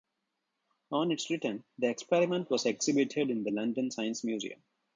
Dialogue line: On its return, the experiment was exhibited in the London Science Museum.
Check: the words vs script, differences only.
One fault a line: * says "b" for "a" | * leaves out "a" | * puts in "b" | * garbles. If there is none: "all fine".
all fine